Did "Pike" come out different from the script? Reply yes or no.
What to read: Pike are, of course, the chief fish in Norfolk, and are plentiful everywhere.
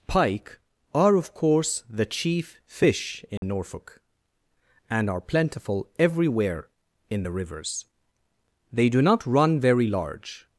no